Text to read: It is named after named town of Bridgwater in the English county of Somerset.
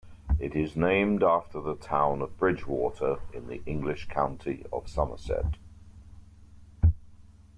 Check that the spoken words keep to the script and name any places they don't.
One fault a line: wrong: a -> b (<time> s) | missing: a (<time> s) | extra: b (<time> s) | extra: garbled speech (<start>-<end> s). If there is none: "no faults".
wrong: named -> the (1.6 s)